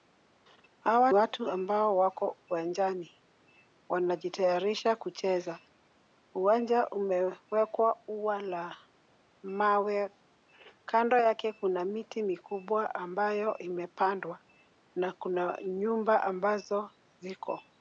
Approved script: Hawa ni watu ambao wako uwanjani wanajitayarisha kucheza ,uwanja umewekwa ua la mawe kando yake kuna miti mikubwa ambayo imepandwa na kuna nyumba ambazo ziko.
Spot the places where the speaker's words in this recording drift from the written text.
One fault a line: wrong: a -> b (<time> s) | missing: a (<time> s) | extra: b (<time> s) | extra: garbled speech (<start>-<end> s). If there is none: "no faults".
missing: ni (1.1 s)